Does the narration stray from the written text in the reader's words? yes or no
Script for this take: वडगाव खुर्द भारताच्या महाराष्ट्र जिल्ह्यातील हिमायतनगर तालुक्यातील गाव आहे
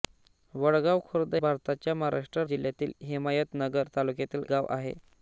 no